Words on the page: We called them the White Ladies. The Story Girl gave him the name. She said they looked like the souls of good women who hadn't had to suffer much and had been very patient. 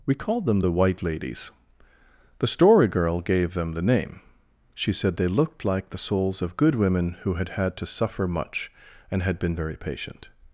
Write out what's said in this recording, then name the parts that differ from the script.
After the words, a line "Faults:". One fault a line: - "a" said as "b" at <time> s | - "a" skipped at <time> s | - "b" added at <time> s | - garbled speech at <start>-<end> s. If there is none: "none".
We called them the White Ladies. The Story Girl gave them the name. She said they looked like the souls of good women who had had to suffer much and had been very patient.
Faults:
- "him" said as "them" at 3.5 s
- "hadn't" said as "had" at 7.3 s